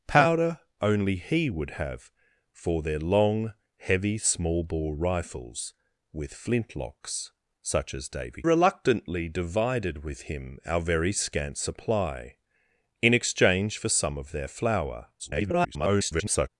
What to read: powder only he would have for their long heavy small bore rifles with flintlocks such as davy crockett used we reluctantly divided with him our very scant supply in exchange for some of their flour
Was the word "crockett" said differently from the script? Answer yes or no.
yes